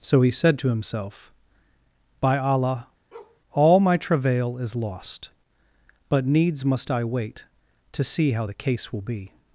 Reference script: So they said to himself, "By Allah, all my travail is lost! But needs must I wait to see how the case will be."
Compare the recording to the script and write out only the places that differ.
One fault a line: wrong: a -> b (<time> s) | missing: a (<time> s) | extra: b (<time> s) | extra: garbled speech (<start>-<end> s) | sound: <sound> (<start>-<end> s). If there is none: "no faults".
wrong: they -> he (0.2 s)
sound: bark (3.1-3.4 s)